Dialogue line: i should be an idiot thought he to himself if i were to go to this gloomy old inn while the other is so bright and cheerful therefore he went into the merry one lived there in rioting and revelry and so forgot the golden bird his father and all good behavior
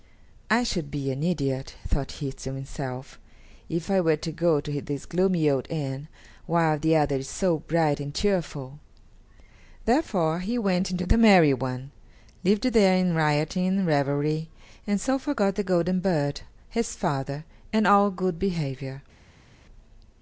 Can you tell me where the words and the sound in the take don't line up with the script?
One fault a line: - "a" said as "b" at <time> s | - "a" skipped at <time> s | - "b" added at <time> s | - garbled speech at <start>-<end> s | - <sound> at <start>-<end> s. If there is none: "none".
none